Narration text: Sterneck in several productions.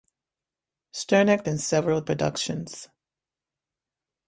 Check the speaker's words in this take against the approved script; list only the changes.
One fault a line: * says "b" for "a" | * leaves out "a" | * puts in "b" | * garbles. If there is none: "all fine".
all fine